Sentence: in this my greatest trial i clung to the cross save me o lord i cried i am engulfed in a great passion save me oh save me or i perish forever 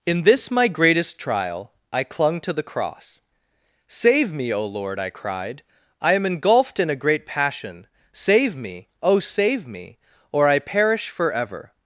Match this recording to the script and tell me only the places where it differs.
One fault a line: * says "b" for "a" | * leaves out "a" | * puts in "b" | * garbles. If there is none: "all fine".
all fine